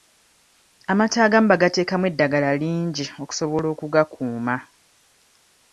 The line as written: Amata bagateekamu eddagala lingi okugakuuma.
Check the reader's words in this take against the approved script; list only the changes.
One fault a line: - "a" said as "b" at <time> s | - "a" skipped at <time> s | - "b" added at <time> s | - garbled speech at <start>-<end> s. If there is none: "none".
- "agamu" added at 1.2 s
- "okusobola" added at 3.2 s